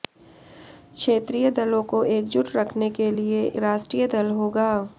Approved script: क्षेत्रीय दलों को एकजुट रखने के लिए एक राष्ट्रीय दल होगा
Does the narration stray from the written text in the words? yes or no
yes